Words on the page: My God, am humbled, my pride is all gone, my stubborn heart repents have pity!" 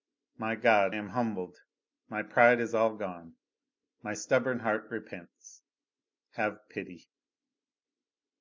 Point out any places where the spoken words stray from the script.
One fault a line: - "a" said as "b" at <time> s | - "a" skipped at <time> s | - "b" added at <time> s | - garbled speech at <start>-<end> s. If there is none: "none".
none